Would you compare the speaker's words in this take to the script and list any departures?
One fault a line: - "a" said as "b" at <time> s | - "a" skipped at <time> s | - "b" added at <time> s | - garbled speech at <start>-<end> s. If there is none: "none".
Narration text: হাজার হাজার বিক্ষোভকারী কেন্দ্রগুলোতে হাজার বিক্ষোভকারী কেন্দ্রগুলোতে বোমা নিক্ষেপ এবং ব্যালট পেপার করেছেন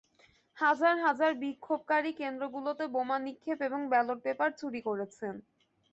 - "হাজার বিক্ষোভকারী কেন্দ্রগুলোতে" skipped at 2.9 s
- "চুরি" added at 4.6 s